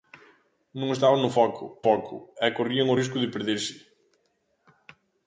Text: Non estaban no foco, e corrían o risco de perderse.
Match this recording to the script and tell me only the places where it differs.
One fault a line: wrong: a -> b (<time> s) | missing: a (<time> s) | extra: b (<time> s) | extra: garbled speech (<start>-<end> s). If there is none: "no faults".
extra: foco (1.9 s)